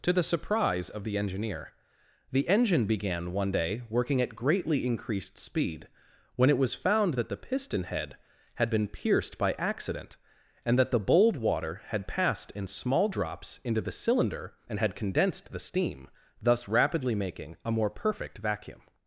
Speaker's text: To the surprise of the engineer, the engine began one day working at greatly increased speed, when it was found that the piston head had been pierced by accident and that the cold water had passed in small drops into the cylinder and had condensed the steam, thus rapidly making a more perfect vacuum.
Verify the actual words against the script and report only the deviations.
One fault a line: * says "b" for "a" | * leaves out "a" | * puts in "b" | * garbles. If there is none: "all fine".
* says "bold" for "cold"